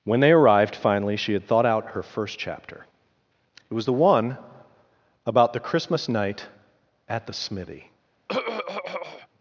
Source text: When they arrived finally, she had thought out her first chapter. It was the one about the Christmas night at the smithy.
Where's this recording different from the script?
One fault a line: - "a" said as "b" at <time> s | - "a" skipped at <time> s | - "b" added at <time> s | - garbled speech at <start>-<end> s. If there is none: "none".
none